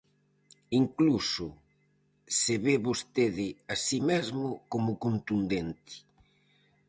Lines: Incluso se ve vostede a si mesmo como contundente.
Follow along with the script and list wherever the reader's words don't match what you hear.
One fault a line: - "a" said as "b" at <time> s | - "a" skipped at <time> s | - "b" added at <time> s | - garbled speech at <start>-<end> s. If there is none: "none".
none